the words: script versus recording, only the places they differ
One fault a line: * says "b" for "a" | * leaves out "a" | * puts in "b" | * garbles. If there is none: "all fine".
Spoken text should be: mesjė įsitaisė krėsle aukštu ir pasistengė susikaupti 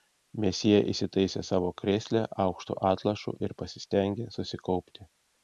* puts in "savo"
* puts in "atlošu"